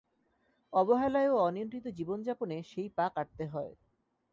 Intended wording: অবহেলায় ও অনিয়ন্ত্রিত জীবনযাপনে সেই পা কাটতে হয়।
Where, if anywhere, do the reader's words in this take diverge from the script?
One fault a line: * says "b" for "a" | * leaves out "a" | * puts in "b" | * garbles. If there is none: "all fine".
all fine